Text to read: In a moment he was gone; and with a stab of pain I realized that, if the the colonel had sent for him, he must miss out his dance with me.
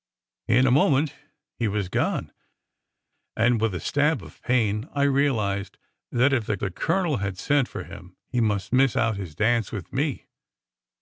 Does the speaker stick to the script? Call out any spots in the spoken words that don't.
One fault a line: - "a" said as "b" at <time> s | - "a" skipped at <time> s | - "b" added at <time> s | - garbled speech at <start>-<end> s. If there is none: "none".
none